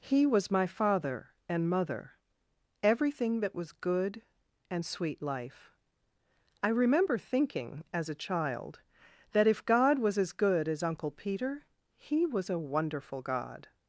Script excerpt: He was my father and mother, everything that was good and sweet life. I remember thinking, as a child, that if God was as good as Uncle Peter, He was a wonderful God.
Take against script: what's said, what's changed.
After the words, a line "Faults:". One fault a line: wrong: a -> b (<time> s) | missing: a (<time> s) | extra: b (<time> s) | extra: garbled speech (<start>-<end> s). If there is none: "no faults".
He was my father and mother, everything that was good and sweet life. I remember thinking, as a child, that if God was as good as Uncle Peter, He was a wonderful God.
Faults:
no faults